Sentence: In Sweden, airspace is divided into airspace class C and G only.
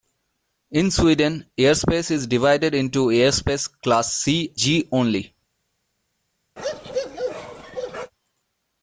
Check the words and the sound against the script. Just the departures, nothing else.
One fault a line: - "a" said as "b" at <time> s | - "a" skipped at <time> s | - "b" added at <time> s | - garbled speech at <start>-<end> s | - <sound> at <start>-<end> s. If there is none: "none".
- "and" skipped at 4.5 s
- bark at 6.6-8.1 s